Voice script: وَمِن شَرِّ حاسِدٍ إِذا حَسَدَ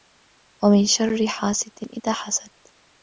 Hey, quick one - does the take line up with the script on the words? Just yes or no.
yes